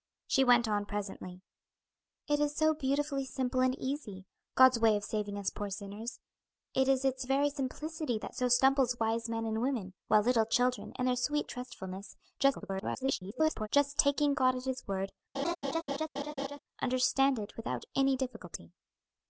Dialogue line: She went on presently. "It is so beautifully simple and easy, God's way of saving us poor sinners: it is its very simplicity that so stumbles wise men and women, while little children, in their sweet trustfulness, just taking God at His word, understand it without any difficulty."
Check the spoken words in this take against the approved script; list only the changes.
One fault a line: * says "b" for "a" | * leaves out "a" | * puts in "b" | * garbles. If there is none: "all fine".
* garbles